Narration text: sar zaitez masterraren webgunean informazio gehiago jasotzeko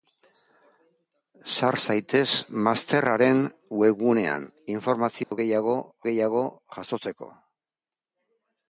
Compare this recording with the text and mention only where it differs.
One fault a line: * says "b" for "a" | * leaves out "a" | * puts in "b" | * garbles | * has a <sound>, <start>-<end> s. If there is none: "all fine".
* has a dropout, 5.2-5.3 s
* puts in "gehiago"